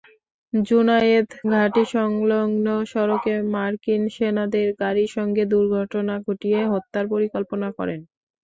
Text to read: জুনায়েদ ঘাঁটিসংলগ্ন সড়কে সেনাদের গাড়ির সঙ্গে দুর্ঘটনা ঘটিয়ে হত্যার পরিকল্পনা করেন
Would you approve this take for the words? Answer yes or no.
no